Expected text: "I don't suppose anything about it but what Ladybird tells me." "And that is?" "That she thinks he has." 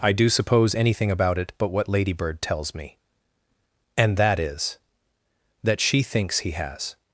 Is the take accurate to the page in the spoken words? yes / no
no